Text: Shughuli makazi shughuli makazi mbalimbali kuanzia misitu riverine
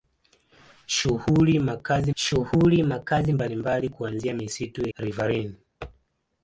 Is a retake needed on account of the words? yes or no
no